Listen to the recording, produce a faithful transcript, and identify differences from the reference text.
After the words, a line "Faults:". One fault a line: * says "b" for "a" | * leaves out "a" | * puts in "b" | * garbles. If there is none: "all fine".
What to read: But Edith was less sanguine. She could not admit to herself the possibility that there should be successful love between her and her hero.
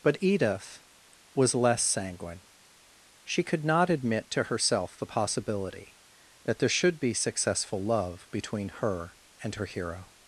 But Edith was less sanguine. She could not admit to herself the possibility that there should be successful love between her and her hero.
Faults:
all fine